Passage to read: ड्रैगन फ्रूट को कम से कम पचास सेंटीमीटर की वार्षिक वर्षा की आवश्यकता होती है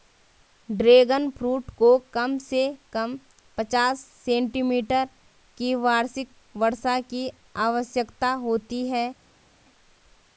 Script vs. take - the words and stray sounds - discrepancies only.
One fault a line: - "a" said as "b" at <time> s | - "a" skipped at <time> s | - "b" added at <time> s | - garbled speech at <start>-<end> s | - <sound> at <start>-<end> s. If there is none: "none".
none